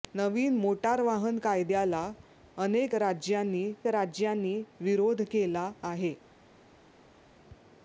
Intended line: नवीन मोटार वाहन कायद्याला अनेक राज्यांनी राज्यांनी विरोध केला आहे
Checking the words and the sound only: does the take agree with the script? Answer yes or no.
yes